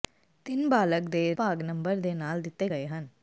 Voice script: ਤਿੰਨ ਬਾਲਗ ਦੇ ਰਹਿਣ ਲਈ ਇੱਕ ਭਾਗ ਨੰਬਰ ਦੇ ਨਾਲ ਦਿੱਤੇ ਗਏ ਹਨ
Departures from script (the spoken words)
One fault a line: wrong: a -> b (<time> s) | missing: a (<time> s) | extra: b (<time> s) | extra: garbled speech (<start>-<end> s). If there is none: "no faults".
missing: ਰਹਿਣ ਲਈ ਇੱਕ (1.3 s)